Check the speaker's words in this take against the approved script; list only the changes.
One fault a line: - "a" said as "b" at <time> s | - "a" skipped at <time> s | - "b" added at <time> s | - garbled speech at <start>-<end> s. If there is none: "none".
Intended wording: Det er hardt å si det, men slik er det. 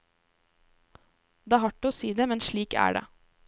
none